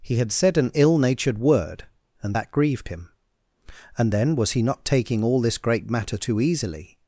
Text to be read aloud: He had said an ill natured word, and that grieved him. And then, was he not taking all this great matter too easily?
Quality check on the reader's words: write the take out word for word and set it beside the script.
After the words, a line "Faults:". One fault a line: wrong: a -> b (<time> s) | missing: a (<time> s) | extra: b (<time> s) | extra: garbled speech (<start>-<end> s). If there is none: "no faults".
He had said an ill natured word, and that grieved him. And then, was he not taking all this great matter too easily?
Faults:
no faults